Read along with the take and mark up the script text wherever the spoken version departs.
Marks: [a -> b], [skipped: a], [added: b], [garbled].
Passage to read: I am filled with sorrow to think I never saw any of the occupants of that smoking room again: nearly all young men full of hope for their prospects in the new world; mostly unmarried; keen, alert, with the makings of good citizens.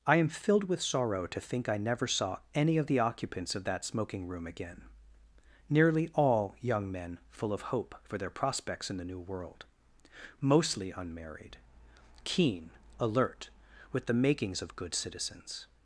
I am filled with sorrow to think I never saw any of the occupants of that smoking room again: nearly all young men full of hope for their prospects in the new world; mostly unmarried; keen, alert, with the makings of good citizens.